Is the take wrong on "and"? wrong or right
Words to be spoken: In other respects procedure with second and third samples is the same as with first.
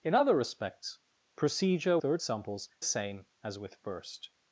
wrong